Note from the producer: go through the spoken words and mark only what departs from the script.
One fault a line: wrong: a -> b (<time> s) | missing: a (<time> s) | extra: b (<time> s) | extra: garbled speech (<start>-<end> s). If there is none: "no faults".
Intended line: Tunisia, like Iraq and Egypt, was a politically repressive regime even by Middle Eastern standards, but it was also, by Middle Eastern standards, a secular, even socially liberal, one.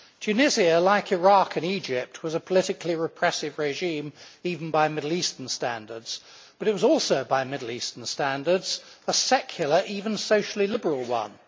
no faults